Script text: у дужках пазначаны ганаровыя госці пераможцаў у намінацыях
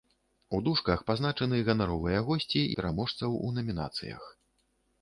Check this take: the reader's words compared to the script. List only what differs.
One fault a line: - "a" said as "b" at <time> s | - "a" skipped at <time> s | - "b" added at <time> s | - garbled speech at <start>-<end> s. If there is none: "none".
none